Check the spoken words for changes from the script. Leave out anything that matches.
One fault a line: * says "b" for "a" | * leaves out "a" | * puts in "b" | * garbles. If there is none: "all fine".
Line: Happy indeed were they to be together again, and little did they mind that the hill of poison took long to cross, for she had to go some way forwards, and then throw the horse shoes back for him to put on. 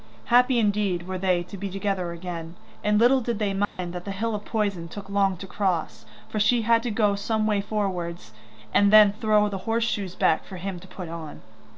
all fine